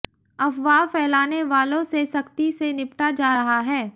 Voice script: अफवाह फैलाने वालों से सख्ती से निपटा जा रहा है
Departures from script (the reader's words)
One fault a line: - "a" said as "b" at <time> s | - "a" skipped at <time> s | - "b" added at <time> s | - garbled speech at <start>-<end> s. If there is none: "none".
none